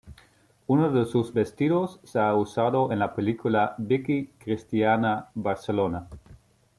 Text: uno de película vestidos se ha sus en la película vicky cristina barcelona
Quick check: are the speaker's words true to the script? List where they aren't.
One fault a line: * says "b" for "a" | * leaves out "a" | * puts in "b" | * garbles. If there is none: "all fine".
* says "sus" for "película"
* says "usado" for "sus"